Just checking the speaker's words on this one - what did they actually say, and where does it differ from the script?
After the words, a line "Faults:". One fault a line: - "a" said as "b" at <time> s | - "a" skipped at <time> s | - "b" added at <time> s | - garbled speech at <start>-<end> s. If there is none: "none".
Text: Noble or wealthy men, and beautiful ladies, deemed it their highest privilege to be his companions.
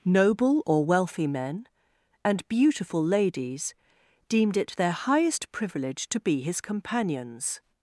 Noble or wealthy men, and beautiful ladies, deemed it their highest privilege to be his companions.
Faults:
none